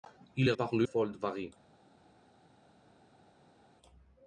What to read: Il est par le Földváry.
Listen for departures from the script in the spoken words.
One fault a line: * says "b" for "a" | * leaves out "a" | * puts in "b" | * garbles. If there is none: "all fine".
all fine